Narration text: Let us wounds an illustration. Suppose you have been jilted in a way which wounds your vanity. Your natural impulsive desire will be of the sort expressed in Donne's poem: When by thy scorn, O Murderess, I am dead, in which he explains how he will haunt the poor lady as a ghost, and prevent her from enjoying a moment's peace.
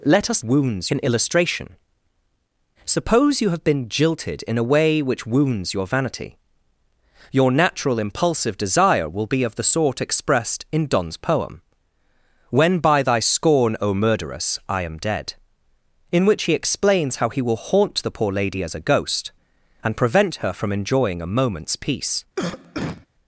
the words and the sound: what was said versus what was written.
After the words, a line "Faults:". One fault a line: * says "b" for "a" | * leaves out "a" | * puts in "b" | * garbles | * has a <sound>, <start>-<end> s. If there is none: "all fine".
Let us wounds an illustration. Suppose you have been jilted in a way which wounds your vanity. Your natural impulsive desire will be of the sort expressed in Donne's poem: When by thy scorn, O Murderess, I am dead, in which he explains how he will haunt the poor lady as a ghost, and prevent her from enjoying a moment's peace.
Faults:
* has a cough, 22.4-23.1 s